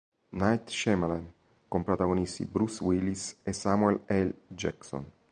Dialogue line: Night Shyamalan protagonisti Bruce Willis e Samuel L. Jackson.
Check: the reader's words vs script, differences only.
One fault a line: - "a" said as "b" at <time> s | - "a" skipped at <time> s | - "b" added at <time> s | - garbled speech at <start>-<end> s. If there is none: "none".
- "con" added at 1.7 s